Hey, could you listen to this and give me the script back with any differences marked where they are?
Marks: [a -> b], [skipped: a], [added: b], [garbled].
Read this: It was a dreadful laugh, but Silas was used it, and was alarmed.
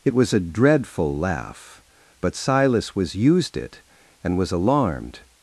It was a dreadful laugh, but Silas was used it, and was alarmed.